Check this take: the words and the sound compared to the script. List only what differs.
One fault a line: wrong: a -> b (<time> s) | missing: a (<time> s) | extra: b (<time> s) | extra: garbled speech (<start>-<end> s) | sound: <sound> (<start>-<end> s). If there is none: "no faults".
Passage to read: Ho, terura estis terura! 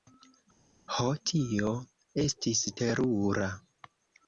wrong: terura -> tio (1.3 s)